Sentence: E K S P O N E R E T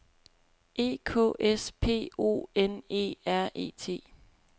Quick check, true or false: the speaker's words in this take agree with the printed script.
true